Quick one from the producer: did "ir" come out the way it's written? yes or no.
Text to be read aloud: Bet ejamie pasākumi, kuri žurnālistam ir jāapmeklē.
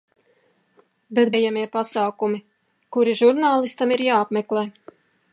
yes